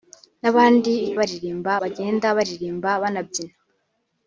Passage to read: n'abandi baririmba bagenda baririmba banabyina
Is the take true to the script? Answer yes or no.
yes